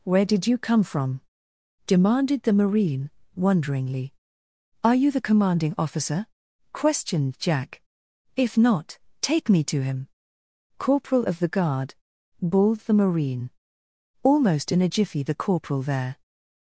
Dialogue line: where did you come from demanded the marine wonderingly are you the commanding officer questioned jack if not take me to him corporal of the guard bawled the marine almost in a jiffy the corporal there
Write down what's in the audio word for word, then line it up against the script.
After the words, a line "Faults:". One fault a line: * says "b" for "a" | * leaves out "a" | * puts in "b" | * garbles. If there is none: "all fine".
where did you come from demanded the marine wonderingly are you the commanding officer questioned jack if not take me to him corporal of the guard bawled the marine almost in a jiffy the corporal there
Faults:
all fine